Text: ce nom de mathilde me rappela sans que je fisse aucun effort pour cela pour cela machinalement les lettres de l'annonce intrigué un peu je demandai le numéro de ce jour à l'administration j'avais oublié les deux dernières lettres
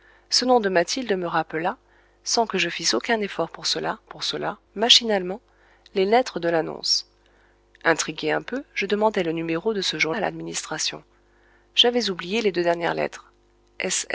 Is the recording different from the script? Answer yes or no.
no